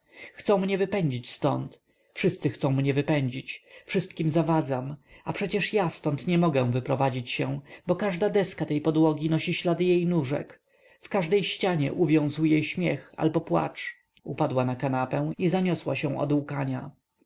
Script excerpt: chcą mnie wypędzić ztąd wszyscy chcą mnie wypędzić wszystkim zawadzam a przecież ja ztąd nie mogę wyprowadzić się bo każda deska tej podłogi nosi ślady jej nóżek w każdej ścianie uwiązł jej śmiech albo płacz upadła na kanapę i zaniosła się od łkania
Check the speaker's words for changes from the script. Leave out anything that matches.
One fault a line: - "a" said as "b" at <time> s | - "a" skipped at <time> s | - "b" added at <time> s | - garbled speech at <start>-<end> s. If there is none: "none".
none